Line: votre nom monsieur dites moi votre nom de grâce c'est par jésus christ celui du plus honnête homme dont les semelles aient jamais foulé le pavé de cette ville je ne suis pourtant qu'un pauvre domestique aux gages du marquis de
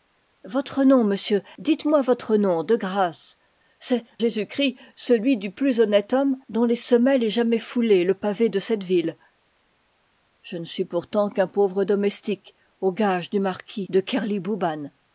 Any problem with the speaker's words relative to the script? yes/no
yes